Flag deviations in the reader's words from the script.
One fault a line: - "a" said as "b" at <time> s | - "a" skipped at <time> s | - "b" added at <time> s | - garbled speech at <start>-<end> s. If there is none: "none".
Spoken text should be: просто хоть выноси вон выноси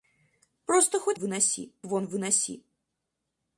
none